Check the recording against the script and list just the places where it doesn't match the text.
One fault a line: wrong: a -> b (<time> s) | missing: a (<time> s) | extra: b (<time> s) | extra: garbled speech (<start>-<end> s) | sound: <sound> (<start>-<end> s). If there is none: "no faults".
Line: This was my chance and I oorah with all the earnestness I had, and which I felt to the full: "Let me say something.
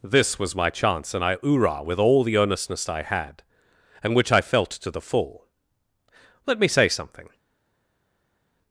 no faults